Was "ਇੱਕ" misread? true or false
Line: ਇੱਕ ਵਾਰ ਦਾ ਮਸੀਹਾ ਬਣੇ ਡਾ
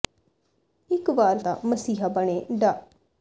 false